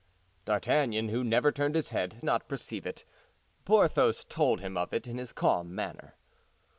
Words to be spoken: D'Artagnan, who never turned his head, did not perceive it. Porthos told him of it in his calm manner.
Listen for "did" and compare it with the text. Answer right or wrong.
wrong